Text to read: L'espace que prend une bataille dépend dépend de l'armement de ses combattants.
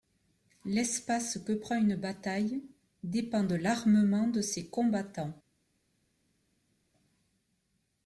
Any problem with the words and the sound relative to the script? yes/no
yes